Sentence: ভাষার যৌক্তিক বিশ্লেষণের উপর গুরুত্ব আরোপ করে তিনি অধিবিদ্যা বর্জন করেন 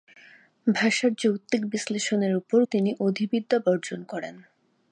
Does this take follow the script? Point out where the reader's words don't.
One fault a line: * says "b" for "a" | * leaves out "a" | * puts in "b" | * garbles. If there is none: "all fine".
* leaves out "গুরুত্ব আরোপ করে"